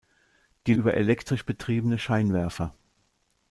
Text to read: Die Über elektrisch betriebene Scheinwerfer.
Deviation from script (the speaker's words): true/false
false